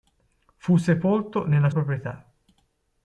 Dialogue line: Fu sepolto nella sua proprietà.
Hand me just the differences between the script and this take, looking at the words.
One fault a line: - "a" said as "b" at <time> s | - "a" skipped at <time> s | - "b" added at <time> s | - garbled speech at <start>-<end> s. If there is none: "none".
- "sua" skipped at 1.7 s